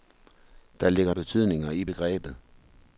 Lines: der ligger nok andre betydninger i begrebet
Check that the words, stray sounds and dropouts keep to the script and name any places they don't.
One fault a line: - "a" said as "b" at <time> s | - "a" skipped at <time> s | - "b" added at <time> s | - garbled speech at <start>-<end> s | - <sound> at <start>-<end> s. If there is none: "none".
- "nok andre" skipped at 1.1 s